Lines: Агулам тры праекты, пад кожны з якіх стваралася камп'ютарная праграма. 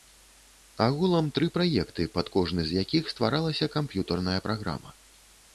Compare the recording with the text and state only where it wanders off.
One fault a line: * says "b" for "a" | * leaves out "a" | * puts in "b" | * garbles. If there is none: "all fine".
all fine